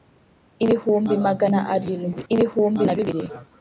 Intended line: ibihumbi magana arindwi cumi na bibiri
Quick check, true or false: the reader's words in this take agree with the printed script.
false